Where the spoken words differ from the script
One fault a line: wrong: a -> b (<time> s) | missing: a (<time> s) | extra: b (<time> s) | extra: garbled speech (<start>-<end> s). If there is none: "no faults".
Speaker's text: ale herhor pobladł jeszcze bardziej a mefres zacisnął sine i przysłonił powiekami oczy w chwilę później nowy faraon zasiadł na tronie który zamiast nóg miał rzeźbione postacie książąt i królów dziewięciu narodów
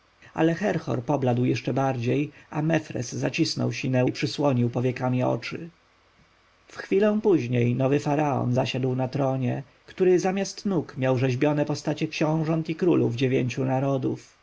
no faults